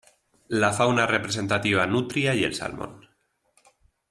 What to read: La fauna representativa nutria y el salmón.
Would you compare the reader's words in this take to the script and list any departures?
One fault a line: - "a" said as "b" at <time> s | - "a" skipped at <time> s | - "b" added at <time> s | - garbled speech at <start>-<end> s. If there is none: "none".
none